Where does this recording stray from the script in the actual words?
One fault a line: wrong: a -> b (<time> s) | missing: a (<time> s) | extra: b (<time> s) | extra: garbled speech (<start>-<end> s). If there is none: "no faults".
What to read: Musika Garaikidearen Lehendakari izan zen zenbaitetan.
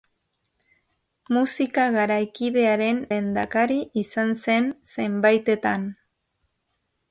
no faults